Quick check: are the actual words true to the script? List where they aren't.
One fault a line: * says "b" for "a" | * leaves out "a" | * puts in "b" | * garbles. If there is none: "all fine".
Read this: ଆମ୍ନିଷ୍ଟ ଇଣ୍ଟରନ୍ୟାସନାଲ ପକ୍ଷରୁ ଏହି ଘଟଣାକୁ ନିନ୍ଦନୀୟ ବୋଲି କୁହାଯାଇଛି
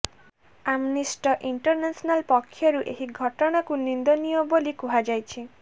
all fine